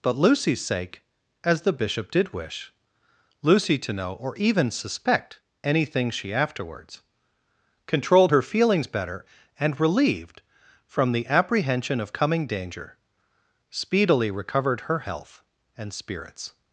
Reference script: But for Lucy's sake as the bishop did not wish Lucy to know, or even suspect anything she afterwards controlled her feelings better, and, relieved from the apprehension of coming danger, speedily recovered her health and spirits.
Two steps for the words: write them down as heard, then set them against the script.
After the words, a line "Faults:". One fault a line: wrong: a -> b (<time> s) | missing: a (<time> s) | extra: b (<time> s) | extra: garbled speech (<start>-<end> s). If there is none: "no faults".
But Lucy's sake as the bishop did wish Lucy to know, or even suspect anything she afterwards controlled her feelings better, and, relieved from the apprehension of coming danger, speedily recovered her health and spirits.
Faults:
missing: for (0.1 s)
missing: not (2.3 s)